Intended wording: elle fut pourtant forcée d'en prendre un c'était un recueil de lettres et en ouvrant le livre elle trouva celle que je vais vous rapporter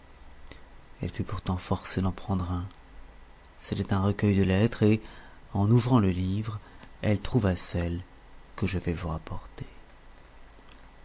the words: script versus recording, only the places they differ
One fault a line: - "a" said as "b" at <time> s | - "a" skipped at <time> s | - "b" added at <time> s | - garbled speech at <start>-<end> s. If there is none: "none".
none